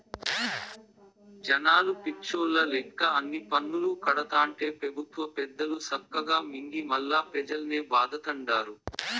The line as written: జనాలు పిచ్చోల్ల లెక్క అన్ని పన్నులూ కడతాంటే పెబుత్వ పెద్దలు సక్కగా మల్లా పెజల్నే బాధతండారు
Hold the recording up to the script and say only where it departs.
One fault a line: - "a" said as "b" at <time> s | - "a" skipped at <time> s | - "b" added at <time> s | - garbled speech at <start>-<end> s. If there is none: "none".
- "మింగి" added at 6.5 s